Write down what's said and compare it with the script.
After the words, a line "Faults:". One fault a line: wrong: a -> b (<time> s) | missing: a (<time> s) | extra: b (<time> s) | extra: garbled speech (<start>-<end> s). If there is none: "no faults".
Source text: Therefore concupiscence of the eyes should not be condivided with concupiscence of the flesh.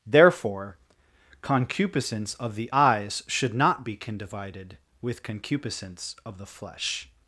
Therefore concupiscence of the eyes should not be condivided with concupiscence of the flesh.
Faults:
no faults